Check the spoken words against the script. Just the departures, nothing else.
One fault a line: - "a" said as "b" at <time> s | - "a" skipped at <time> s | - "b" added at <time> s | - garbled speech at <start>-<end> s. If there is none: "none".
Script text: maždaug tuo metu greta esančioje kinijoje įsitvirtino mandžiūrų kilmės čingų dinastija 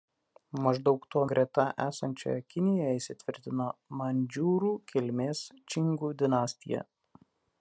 - "metu" skipped at 1.2 s